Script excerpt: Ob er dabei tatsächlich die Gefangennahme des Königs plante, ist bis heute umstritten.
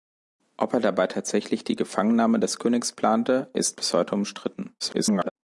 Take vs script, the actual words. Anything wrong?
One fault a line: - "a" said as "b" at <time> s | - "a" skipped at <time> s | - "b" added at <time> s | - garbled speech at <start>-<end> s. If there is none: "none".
- garbled speech at 4.8-5.3 s